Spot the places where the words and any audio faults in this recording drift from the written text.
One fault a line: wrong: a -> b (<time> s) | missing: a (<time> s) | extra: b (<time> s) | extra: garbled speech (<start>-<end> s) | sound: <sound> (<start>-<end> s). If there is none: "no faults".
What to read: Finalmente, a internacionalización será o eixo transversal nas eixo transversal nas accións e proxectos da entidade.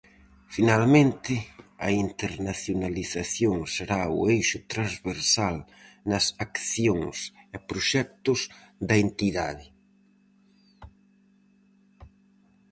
missing: eixo transversal nas (6.2 s)